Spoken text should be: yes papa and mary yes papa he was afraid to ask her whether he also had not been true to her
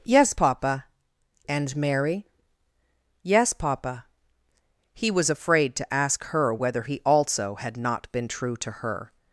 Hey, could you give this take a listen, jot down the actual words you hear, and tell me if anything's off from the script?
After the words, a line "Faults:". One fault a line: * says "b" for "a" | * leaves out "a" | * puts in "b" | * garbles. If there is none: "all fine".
yes papa and mary yes papa he was afraid to ask her whether he also had not been true to her
Faults:
all fine